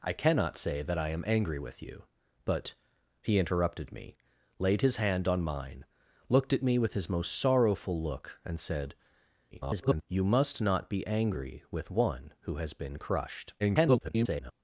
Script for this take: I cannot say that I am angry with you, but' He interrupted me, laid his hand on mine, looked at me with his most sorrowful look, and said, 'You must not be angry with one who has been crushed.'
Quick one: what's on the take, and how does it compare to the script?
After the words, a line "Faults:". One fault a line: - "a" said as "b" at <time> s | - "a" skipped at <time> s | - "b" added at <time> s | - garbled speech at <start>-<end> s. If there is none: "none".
I cannot say that I am angry with you, but' He interrupted me, laid his hand on mine, looked at me with his most sorrowful look, and said, [garbled] 'You must not be angry with one who has been crushed.' [garbled]
Faults:
- garbled speech at 9.5-10.0 s
- garbled speech at 13.6-14.5 s